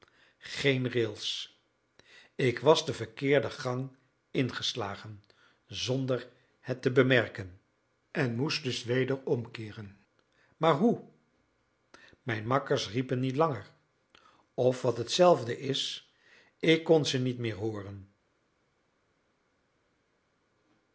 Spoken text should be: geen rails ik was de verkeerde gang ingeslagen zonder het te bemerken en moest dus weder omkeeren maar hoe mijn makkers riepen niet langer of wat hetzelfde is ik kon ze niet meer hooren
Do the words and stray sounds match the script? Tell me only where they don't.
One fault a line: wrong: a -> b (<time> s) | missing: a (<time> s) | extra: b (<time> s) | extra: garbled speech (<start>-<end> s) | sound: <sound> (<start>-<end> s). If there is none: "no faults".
no faults